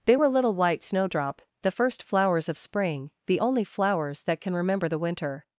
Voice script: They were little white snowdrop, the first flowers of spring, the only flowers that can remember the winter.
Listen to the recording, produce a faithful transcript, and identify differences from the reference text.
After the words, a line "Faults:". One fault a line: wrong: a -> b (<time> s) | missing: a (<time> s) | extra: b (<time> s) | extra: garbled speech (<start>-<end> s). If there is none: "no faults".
They were little white snowdrop, the first flowers of spring, the only flowers that can remember the winter.
Faults:
no faults